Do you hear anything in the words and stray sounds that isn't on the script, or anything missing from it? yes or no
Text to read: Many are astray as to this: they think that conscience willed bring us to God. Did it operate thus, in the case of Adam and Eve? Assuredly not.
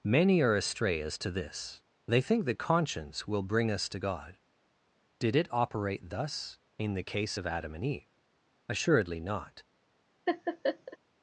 yes